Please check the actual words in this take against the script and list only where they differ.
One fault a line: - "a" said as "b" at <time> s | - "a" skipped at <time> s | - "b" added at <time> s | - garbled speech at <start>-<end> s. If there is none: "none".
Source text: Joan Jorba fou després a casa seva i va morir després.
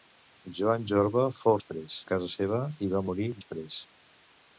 none